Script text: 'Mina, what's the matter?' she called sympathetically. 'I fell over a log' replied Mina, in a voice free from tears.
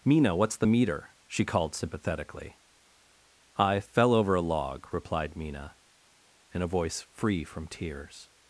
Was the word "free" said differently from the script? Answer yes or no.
no